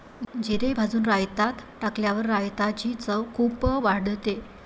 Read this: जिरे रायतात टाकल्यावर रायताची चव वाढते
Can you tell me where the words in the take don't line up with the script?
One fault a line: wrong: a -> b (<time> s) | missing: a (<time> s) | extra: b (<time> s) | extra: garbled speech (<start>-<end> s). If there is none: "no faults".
extra: भाजून (0.7 s)
extra: खूप (3.4 s)